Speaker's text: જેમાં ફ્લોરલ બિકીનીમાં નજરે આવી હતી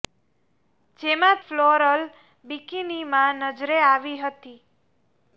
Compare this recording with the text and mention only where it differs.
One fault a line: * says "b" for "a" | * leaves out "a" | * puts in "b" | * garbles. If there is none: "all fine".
all fine